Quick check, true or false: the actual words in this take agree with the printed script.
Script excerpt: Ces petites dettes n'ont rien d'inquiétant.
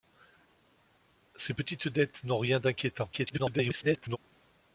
false